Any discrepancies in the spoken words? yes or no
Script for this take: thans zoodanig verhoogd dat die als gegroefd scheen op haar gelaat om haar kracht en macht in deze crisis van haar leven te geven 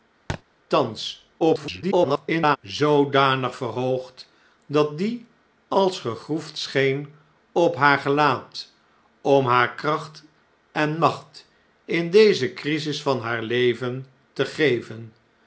yes